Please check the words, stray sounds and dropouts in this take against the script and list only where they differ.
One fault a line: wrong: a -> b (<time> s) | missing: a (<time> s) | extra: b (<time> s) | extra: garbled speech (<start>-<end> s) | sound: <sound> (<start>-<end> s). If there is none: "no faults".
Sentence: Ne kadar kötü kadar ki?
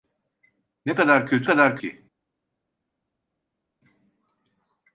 no faults